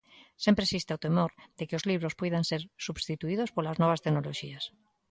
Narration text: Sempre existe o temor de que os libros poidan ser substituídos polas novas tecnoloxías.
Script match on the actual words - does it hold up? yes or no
yes